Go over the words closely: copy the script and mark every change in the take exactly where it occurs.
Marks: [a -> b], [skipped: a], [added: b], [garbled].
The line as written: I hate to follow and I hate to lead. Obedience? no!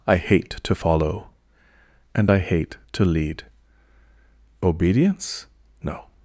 I hate to follow and I hate to lead. Obedience? no!